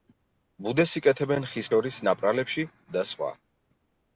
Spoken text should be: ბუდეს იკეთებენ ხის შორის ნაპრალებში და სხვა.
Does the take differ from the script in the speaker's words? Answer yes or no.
no